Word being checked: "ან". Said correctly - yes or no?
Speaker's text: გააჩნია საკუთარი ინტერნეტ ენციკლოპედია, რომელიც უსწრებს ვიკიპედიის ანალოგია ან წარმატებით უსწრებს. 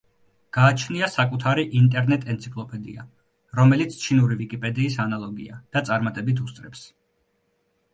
no